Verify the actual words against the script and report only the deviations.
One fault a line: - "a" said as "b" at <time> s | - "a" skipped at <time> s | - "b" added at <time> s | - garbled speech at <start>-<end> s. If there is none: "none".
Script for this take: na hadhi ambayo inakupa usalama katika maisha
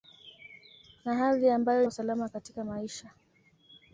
- "inakupa" skipped at 1.8 s